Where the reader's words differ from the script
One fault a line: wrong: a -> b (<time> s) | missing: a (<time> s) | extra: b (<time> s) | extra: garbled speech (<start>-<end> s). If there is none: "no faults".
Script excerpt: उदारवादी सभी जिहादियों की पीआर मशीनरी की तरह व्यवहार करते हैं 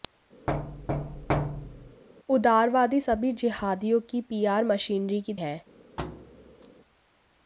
missing: तरह व्यवहार करते (5.3 s)